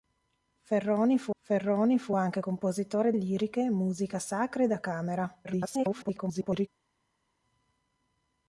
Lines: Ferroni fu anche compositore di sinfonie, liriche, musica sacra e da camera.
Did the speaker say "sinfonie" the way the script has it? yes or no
no